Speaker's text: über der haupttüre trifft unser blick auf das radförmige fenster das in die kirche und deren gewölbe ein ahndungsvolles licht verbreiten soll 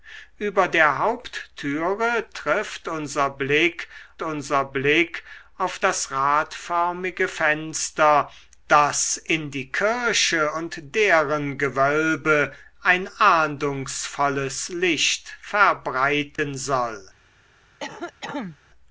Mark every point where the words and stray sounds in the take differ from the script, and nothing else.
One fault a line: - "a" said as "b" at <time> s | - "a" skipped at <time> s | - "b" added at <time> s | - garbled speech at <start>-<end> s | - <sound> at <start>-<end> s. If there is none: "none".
- "unser blick" added at 4.2 s
- dropout at 16.4-16.4 s
- cough at 17.8-18.6 s